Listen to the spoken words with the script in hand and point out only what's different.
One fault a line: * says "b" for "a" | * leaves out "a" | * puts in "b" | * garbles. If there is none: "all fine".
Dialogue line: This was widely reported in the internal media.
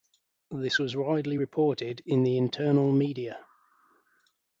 all fine